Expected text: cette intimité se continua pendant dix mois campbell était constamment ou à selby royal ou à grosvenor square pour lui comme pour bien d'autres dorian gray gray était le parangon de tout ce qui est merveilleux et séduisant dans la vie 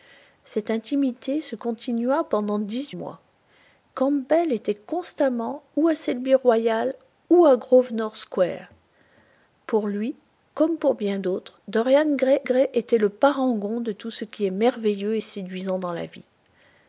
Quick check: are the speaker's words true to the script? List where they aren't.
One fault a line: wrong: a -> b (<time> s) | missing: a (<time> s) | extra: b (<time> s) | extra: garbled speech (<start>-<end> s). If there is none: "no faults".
no faults